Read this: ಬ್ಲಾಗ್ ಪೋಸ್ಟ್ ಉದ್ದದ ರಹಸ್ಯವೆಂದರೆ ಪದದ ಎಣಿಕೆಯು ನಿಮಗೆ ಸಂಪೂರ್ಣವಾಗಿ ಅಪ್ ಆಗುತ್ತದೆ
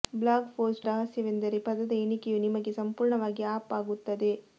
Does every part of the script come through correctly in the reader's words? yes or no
no